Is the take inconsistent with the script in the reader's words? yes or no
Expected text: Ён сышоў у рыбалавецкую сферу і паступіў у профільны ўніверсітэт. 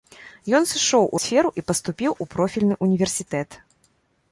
yes